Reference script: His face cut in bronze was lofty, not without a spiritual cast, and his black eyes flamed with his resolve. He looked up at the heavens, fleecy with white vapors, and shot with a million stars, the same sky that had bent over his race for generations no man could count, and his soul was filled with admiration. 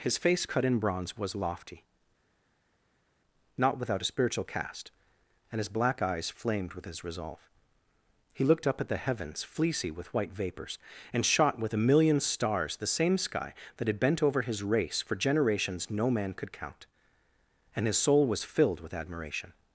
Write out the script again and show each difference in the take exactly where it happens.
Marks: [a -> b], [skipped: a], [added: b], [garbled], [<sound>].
His face cut in bronze was lofty, not without a spiritual cast, and his black eyes flamed with his resolve. He looked up at the heavens, fleecy with white vapors, and shot with a million stars, the same sky that had bent over his race for generations no man could count, and his soul was filled with admiration.